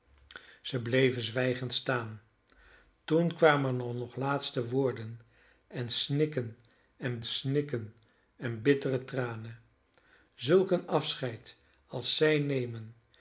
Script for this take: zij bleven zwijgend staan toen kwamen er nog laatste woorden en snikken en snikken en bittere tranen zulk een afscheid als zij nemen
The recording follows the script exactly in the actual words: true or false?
true